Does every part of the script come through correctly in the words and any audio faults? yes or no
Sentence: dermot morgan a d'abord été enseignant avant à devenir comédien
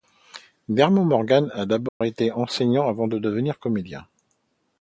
no